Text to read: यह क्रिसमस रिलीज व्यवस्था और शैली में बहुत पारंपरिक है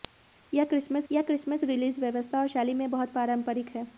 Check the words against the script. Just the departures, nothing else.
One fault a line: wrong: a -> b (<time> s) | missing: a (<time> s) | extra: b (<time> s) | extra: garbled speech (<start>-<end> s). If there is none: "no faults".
extra: यह क्रिसमस (1.1 s)